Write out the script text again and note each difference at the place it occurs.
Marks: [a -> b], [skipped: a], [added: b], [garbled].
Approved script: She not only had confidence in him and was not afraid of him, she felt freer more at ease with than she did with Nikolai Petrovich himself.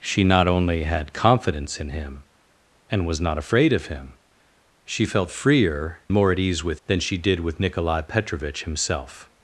She not only had confidence in him and was not afraid of him, she felt freer more at ease with than she did with Nikolai Petrovich himself.